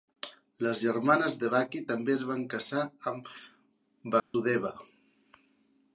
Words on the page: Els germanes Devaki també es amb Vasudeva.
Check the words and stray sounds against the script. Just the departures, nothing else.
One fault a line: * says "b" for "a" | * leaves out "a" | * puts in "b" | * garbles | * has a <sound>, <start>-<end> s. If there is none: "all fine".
* says "Les" for "Els"
* puts in "van casar"
* has a dropout, 4.2-4.3 s